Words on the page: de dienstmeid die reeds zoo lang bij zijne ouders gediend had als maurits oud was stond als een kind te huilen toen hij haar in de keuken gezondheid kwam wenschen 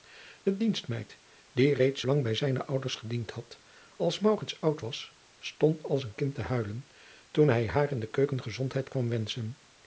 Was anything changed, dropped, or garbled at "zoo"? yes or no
yes